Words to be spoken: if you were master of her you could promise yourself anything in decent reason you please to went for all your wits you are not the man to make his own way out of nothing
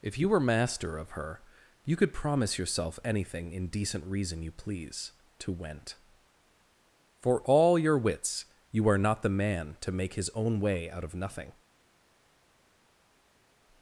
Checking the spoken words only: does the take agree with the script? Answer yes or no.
yes